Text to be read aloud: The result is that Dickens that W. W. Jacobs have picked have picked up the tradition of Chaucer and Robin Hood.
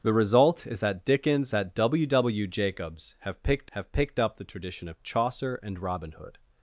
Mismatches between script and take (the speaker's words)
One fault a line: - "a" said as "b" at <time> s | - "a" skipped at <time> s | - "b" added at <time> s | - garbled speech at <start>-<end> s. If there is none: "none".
none